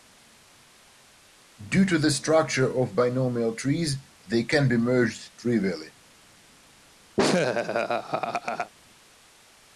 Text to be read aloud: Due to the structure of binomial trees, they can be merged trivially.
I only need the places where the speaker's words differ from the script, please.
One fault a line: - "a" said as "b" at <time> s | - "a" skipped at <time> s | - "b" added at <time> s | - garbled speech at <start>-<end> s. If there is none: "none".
none